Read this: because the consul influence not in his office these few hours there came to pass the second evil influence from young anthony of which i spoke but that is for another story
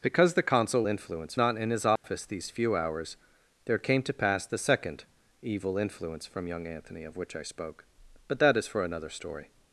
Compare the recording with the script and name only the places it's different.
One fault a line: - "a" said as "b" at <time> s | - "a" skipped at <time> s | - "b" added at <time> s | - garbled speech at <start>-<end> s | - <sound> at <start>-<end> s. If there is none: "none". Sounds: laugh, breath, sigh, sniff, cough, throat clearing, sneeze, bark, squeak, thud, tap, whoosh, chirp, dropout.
- dropout at 2.0-2.0 s